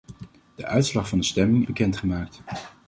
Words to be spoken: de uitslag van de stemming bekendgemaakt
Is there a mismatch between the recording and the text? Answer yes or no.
no